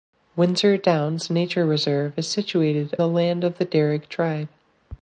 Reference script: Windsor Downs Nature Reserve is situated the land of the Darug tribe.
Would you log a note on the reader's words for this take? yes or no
no